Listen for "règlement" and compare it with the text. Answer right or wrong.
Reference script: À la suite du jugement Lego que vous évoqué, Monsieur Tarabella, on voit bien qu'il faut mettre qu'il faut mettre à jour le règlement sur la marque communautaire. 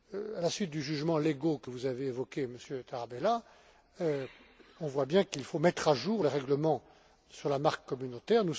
right